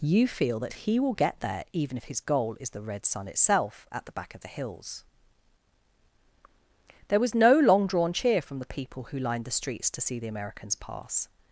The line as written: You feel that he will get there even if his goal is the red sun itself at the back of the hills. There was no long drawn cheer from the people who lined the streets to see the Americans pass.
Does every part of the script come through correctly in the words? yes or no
yes